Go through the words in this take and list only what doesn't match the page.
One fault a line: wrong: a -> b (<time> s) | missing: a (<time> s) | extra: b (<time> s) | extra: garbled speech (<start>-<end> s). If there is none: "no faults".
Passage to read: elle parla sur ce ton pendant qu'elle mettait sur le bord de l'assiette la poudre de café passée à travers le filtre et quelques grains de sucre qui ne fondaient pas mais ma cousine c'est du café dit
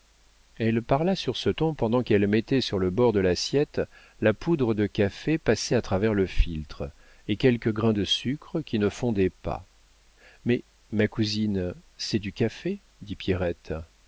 no faults